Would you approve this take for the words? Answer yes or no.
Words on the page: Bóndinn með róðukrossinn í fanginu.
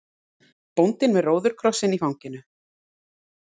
yes